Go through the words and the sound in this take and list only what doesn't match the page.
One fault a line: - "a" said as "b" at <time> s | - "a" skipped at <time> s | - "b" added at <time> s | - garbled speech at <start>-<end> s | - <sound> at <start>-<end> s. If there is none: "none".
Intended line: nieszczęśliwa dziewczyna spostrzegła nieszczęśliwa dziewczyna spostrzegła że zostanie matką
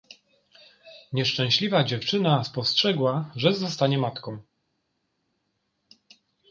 - "nieszczęśliwa dziewczyna spostrzegła" skipped at 3.3 s